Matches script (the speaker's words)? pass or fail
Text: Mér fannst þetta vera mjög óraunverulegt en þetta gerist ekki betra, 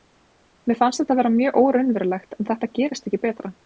pass